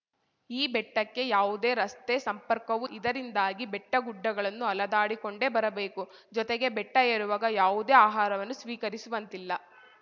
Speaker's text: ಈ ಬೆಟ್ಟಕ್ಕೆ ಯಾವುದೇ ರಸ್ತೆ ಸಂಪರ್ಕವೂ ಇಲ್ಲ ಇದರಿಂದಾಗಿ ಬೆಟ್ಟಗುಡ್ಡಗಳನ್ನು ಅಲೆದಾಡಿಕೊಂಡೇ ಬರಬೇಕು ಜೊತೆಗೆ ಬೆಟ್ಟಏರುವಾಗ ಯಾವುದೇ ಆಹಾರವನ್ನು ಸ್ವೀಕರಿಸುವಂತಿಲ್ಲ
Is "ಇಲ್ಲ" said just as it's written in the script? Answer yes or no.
no